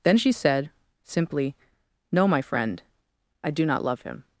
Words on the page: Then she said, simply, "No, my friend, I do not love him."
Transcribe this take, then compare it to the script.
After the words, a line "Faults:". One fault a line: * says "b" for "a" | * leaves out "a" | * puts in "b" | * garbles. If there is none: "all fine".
Then she said, simply, "No, my friend, I do not love him."
Faults:
all fine